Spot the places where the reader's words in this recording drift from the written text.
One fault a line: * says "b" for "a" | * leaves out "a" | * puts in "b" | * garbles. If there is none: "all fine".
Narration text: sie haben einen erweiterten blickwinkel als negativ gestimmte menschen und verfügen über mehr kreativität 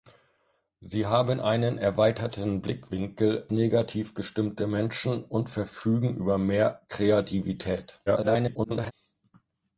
* leaves out "als"
* garbles